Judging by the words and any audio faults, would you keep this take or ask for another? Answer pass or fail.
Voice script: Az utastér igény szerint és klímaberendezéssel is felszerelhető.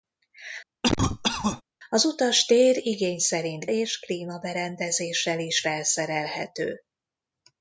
fail